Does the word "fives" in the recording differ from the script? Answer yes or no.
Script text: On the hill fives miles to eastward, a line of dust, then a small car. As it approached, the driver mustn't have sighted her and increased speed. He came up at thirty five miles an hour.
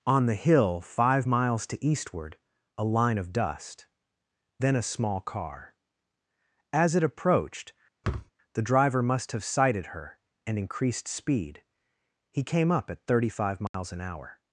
yes